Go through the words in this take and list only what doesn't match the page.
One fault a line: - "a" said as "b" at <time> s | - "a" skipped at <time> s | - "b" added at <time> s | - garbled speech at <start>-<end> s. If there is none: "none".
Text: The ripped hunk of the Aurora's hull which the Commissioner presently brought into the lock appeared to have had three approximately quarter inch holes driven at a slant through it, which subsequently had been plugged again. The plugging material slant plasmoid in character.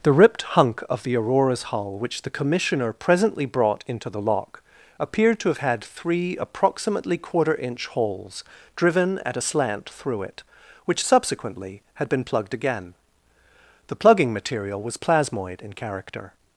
- "slant" said as "was" at 14.8 s